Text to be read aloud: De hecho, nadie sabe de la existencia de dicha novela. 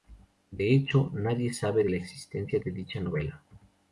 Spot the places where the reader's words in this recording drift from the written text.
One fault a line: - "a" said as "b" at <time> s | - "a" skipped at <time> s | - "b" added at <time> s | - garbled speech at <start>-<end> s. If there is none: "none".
none